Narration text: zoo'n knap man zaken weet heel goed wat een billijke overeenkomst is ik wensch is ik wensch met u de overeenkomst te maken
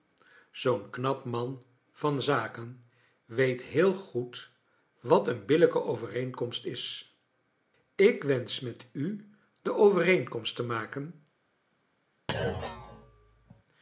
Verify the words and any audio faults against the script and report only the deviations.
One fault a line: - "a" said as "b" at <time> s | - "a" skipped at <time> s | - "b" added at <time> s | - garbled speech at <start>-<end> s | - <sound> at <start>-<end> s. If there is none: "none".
- "van" added at 1.9 s
- "is ik wensch" skipped at 8.6 s
- thud at 12.3-13.6 s